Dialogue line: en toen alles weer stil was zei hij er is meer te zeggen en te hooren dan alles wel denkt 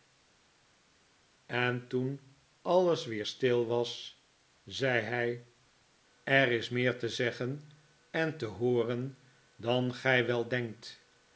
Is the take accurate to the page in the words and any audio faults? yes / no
no